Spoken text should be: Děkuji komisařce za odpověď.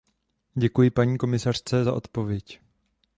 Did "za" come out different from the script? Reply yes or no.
no